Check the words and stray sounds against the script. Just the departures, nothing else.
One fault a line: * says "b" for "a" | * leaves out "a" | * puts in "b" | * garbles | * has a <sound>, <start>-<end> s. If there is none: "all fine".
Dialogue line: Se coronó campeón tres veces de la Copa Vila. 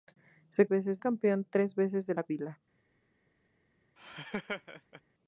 * says "veces" for "coronó"
* leaves out "Copa"
* has a laugh, 4.0-5.0 s